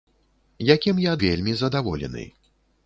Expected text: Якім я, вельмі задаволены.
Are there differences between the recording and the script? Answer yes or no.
no